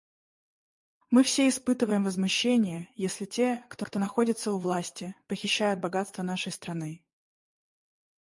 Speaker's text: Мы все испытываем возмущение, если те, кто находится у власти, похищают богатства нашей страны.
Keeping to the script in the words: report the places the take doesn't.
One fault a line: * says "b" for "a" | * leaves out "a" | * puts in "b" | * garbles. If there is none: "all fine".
* puts in "кто"